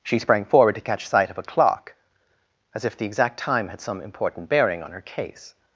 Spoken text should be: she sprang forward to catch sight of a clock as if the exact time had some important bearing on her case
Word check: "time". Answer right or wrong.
right